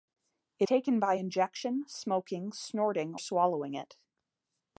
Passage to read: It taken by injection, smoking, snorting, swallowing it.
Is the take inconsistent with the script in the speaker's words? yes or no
no